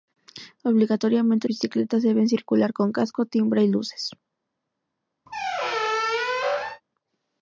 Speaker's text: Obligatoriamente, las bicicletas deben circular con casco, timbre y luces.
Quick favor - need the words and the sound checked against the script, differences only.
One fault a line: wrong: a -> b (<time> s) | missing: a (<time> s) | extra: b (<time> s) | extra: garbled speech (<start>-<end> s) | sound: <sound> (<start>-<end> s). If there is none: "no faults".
missing: las (1.5 s)
sound: squeak (5.3-6.8 s)